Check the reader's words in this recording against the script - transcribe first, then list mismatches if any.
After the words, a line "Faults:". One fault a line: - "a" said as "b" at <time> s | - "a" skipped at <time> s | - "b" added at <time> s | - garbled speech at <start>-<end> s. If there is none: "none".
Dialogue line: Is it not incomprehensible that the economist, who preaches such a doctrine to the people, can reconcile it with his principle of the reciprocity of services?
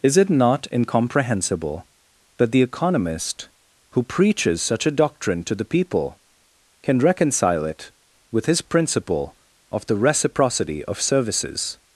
Is it not incomprehensible that the economist, who preaches such a doctrine to the people, can reconcile it with his principle of the reciprocity of services?
Faults:
none